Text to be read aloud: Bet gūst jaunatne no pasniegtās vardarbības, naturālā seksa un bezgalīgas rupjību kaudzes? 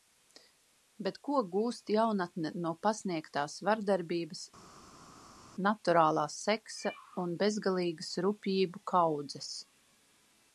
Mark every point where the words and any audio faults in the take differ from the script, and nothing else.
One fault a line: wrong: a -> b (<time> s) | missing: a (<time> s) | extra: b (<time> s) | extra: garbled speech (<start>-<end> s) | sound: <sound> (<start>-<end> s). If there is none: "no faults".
extra: ko (1.3 s)